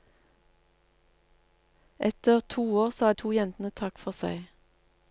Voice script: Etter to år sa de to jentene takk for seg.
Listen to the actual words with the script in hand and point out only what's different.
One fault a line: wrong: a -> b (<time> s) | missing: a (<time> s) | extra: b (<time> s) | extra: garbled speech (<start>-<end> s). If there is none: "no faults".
missing: de (3.1 s)